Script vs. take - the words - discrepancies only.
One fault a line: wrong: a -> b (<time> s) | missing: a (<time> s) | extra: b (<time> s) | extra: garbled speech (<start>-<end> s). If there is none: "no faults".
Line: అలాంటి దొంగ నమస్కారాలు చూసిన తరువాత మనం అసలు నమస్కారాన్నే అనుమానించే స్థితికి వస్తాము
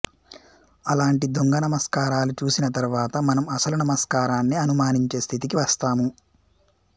no faults